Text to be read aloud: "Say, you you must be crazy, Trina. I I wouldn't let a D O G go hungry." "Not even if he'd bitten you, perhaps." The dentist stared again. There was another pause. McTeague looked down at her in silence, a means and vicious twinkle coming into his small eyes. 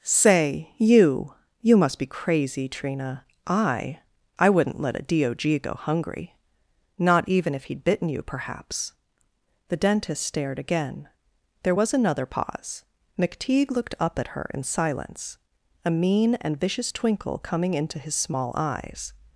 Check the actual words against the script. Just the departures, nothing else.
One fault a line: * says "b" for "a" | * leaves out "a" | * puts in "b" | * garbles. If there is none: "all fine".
* says "up" for "down"
* says "mean" for "means"